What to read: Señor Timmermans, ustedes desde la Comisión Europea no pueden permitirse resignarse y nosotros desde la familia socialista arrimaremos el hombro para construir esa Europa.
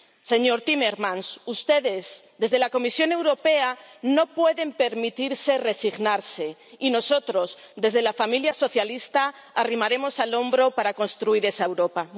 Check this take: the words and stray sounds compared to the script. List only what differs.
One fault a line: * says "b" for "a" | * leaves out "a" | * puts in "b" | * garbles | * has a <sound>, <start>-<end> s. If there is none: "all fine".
all fine